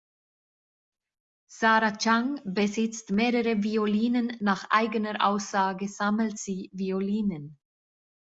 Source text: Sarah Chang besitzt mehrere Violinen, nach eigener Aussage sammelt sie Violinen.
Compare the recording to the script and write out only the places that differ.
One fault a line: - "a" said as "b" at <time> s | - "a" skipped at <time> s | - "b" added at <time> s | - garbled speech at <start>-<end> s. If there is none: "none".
none